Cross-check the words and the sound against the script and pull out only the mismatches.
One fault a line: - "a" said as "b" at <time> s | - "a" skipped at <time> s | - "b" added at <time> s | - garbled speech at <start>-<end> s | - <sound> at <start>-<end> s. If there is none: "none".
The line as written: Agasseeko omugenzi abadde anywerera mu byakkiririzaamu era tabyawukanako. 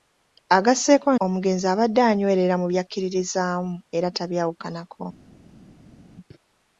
none